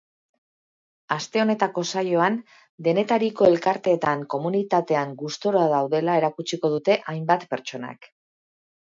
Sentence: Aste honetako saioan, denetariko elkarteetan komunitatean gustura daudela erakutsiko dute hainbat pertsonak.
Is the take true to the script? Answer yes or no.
yes